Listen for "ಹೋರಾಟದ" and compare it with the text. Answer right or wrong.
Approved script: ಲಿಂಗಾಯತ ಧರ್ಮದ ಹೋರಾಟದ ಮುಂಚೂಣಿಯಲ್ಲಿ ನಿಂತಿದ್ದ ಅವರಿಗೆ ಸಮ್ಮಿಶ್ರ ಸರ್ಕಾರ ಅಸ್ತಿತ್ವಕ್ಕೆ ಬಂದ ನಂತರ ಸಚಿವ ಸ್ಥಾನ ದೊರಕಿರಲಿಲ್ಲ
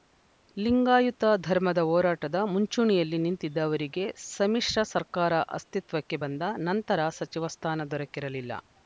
right